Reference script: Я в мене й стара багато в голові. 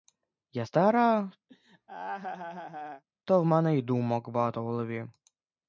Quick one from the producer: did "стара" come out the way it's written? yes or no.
no